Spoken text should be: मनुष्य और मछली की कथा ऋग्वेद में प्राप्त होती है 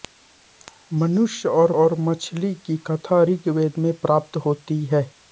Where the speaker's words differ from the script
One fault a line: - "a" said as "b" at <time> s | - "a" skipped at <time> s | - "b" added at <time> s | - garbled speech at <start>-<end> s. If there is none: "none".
- "और" added at 1.7 s